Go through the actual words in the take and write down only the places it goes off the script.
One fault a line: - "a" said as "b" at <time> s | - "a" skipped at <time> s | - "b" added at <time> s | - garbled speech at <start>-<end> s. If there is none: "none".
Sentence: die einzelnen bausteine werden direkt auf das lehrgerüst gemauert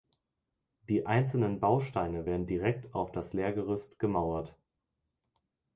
none